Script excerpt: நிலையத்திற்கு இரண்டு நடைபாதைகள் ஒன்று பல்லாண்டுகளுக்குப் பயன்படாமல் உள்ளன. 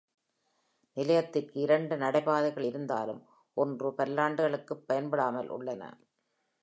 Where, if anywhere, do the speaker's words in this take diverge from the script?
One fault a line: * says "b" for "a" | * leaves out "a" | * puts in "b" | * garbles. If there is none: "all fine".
* puts in "இருந்தாலும்"